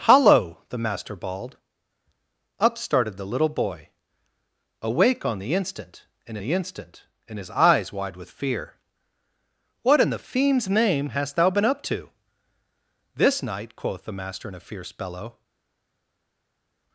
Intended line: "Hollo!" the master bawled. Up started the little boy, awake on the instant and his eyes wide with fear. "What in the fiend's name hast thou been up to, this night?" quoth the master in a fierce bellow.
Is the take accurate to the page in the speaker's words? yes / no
no